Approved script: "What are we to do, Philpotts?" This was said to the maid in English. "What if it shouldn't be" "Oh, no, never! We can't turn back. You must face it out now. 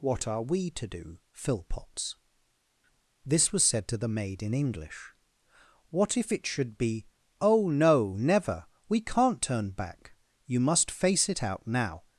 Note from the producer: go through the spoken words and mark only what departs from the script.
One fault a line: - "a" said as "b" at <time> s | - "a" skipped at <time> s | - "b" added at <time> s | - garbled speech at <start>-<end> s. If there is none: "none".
- "shouldn't" said as "should" at 6.5 s